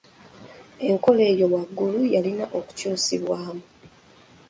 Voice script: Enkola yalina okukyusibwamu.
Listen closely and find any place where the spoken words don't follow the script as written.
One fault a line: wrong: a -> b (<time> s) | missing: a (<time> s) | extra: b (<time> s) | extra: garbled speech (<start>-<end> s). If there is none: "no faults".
extra: eyo waggulu (1.3 s)